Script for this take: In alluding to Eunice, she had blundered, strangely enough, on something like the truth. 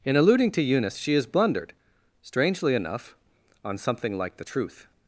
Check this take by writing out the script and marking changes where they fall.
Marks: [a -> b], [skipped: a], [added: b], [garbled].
In alluding to Eunice, she [had -> has] blundered, strangely enough, on something like the truth.